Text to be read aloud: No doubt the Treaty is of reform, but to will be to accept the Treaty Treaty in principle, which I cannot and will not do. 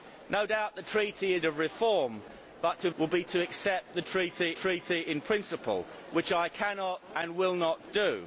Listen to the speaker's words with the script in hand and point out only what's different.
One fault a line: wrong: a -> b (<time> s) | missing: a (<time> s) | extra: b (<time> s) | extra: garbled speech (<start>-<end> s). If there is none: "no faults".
no faults